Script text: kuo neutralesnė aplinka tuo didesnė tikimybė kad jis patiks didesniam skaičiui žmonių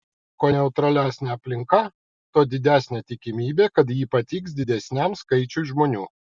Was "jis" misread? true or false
true